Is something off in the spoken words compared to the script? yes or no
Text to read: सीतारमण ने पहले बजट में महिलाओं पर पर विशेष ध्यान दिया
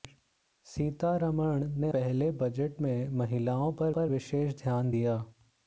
no